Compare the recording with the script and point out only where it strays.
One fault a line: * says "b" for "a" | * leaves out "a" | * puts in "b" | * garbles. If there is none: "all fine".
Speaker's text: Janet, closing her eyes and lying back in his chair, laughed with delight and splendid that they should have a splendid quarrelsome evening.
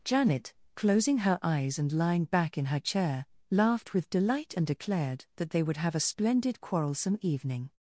* says "her" for "his"
* says "declared" for "splendid"
* says "would" for "should"